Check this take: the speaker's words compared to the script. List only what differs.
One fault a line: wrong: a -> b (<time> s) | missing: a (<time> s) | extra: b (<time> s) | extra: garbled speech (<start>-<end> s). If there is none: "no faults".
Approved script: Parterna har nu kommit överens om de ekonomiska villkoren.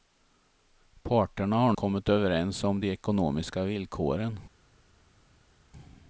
missing: nu (1.7 s)